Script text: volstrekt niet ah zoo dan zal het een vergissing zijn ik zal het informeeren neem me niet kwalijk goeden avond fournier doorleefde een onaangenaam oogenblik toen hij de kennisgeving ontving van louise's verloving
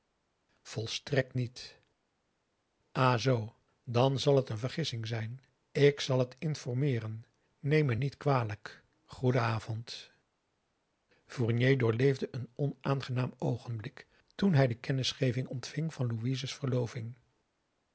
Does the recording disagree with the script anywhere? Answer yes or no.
no